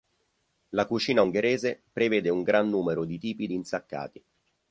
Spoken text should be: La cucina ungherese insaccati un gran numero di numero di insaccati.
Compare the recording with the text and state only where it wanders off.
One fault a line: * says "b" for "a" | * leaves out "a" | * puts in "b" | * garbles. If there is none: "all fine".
* says "prevede" for "insaccati"
* says "tipi" for "numero"